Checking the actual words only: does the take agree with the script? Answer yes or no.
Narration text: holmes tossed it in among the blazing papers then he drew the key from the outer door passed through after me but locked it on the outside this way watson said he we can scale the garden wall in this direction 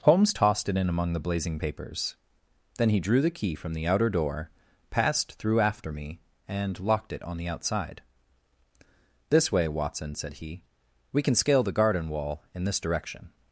no